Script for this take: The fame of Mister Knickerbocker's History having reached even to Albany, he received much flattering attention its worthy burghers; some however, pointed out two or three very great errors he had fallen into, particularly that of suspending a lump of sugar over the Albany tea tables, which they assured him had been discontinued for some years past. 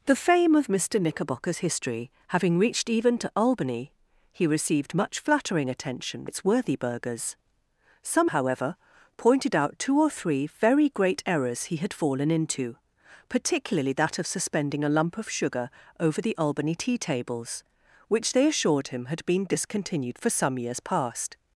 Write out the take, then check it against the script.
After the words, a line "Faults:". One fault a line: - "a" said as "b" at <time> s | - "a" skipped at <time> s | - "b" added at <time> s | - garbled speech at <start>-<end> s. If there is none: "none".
The fame of Mister Knickerbocker's History having reached even to Albany, he received much flattering attention its worthy burghers; some however, pointed out two or three very great errors he had fallen into, particularly that of suspending a lump of sugar over the Albany tea tables, which they assured him had been discontinued for some years past.
Faults:
none